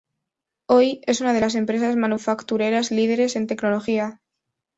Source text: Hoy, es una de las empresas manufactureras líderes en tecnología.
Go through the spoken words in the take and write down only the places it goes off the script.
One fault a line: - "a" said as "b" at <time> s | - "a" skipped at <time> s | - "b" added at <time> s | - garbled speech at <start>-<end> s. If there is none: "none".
none